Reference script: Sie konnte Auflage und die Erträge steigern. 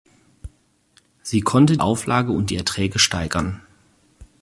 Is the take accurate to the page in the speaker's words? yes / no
yes